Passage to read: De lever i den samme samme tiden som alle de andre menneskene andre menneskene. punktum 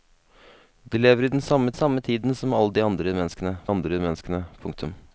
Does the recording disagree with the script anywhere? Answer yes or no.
no